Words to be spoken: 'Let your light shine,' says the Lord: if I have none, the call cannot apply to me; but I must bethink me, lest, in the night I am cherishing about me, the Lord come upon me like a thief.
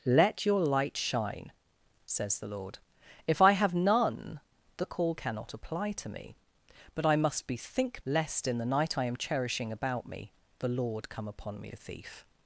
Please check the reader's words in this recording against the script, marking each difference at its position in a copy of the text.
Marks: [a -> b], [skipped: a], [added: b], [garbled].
'Let your light shine,' says the Lord: if I have none, the call cannot apply to me; but I must bethink [skipped: me,] lest, in the night I am cherishing about me, the Lord come upon me [skipped: like] a thief.